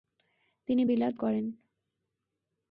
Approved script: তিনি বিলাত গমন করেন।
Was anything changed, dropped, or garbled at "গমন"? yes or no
yes